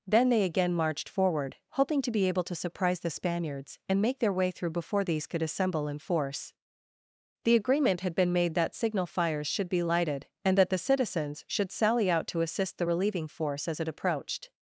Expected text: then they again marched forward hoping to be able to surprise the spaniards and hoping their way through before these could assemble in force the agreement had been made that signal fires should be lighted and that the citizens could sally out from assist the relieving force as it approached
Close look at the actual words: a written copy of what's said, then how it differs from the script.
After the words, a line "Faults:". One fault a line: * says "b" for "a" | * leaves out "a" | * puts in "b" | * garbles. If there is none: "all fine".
then they again marched forward hoping to be able to surprise the spaniards and make their way through before these could assemble in force the agreement had been made that signal fires should be lighted and that the citizens should sally out to assist the relieving force as it approached
Faults:
* says "make" for "hoping"
* says "should" for "could"
* says "to" for "from"